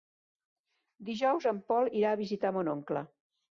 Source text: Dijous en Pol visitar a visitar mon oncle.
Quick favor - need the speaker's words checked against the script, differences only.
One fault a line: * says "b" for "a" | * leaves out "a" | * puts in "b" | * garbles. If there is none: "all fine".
* says "irà" for "visitar"